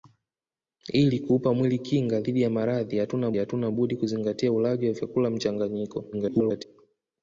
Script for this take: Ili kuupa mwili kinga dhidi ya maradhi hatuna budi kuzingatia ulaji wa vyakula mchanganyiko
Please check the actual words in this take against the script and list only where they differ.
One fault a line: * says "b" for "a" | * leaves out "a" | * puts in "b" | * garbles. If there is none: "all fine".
* puts in "hatuna"
* garbles